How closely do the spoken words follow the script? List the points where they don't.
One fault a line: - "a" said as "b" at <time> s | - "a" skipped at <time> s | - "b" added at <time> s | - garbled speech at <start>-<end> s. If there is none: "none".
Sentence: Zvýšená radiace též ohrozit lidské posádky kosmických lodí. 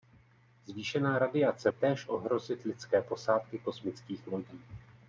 none